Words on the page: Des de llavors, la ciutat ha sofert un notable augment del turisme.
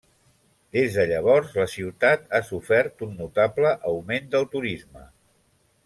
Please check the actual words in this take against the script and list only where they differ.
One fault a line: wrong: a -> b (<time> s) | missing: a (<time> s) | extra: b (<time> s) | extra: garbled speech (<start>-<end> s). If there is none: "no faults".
no faults